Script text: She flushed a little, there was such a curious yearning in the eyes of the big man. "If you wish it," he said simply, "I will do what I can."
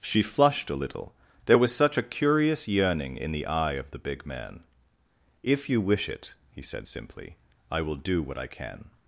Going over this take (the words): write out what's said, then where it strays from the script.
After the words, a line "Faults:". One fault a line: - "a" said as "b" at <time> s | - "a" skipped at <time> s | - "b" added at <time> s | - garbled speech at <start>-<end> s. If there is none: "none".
She flushed a little, there was such a curious yearning in the eye of the big man. "If you wish it," he said simply, "I will do what I can."
Faults:
- "eyes" said as "eye" at 3.5 s